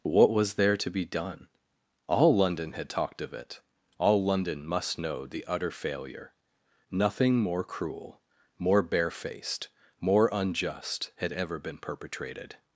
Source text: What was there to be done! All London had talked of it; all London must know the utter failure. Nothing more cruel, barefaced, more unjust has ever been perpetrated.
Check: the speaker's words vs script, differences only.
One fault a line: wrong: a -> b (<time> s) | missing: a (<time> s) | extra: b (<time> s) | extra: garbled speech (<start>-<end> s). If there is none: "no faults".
extra: more (8.6 s)
wrong: has -> had (11.2 s)